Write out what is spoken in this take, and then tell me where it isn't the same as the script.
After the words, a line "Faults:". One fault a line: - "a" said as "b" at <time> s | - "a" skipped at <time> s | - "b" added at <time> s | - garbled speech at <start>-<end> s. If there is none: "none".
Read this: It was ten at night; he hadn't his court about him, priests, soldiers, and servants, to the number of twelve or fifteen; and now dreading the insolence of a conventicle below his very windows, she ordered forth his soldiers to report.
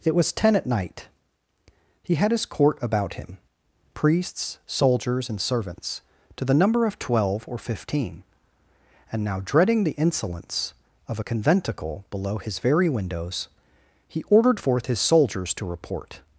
It was ten at night; he had his court about him, priests, soldiers, and servants, to the number of twelve or fifteen; and now dreading the insolence of a conventicle below his very windows, he ordered forth his soldiers to report.
Faults:
- "hadn't" said as "had" at 2.2 s
- "she" said as "he" at 14.1 s